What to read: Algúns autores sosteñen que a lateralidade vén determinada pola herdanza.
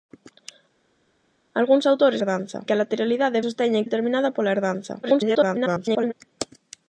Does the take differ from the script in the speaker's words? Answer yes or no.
yes